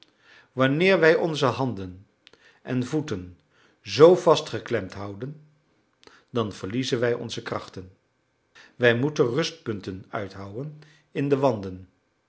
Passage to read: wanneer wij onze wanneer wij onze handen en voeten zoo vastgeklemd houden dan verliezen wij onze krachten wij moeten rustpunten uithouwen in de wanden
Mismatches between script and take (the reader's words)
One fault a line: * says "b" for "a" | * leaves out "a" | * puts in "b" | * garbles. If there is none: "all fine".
* leaves out "wanneer wij onze"